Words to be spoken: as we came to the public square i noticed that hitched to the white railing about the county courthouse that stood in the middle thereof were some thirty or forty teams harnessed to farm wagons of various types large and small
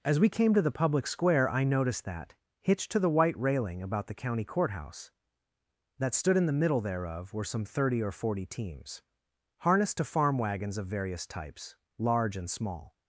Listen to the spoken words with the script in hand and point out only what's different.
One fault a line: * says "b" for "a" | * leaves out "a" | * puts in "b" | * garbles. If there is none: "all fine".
all fine